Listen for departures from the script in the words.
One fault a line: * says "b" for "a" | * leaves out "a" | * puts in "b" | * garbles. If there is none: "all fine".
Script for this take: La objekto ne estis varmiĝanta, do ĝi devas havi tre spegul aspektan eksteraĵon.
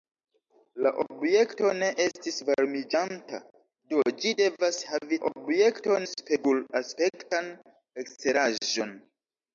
* says "objekto" for "tre"